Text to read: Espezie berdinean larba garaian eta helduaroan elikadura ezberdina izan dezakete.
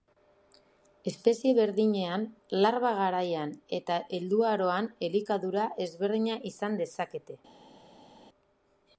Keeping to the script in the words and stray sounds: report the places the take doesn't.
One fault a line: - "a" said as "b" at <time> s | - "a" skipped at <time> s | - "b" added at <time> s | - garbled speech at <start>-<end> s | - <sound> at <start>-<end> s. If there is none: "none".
none